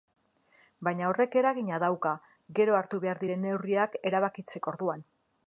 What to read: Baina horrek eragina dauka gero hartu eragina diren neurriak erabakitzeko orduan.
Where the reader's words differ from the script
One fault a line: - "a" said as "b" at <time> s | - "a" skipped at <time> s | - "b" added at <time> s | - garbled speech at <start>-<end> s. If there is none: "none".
- "eragina" said as "behar" at 3.0 s